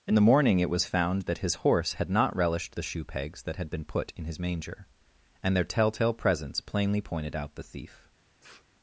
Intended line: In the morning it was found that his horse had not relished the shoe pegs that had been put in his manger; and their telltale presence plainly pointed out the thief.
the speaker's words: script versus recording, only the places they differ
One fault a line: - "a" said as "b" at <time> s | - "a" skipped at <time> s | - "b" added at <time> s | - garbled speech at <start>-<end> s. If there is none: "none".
none